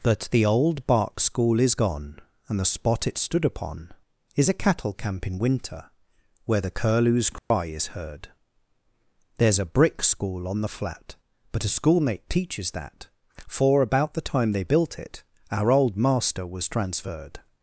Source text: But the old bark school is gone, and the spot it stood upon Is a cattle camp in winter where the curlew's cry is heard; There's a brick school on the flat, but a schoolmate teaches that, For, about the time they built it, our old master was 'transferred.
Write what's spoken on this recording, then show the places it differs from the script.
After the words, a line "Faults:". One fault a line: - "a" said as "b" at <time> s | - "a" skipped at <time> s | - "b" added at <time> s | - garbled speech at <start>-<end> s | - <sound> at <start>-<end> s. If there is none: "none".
That the old bark school is gone, and the spot it stood upon Is a cattle camp in winter where the curlew's cry is heard; There's a brick school on the flat, but a schoolmate teaches that, For, about the time they built it, our old master was 'transferred.
Faults:
- "But" said as "That" at 0.0 s
- dropout at 7.4-7.5 s